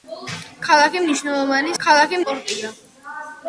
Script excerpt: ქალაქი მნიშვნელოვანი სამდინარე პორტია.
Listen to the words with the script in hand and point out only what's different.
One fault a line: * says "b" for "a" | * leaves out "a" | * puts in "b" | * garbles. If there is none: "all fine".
* says "ქალაქი" for "სამდინარე"